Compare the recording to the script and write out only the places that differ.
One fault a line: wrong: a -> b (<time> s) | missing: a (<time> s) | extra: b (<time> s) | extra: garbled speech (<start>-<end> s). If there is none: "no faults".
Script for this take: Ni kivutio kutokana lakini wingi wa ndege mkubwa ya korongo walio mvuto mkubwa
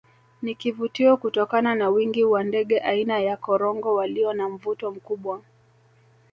wrong: lakini -> na (1.8 s)
wrong: mkubwa -> aina (2.8 s)
extra: na (4.3 s)